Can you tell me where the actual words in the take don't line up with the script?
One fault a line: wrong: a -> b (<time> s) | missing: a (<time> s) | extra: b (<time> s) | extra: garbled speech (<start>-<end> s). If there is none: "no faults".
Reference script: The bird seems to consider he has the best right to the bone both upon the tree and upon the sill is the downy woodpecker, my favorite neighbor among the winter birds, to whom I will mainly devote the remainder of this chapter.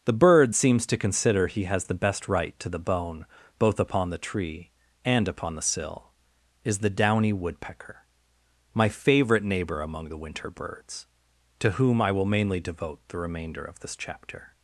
no faults